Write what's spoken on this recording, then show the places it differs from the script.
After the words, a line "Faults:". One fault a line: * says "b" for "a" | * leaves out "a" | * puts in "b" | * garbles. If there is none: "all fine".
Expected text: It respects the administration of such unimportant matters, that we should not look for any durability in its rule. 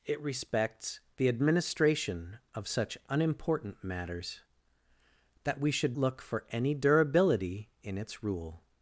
It respects the administration of such unimportant matters, that we should look for any durability in its rule.
Faults:
* leaves out "not"